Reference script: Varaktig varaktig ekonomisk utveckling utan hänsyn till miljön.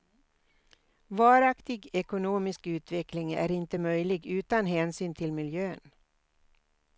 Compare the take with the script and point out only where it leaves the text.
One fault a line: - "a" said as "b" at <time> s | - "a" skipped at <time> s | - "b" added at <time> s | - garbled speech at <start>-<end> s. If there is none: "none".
- "varaktig" skipped at 1.9 s
- "är inte möjlig" added at 3.3 s